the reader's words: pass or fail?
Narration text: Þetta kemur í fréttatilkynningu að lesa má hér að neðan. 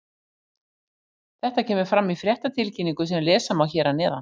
fail